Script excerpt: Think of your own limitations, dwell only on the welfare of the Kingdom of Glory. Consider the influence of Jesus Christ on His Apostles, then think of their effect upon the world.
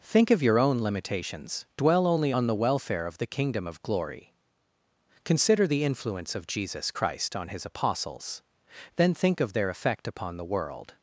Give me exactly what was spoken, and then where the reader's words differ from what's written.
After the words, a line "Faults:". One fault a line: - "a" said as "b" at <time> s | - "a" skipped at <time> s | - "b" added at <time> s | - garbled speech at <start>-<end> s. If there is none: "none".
Think of your own limitations, dwell only on the welfare of the Kingdom of Glory. Consider the influence of Jesus Christ on His Apostles, then think of their effect upon the world.
Faults:
none